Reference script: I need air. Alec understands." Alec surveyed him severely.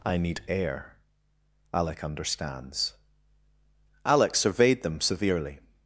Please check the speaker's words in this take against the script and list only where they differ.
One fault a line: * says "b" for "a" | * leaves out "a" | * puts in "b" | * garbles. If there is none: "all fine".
* says "them" for "him"